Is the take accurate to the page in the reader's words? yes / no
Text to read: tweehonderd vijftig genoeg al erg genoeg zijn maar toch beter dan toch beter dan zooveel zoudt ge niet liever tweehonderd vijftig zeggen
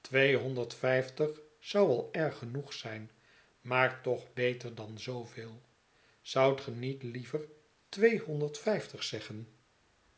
no